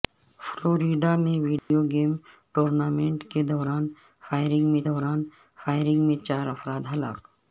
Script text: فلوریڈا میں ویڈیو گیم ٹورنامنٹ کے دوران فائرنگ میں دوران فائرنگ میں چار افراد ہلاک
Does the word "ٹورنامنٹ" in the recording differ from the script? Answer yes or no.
no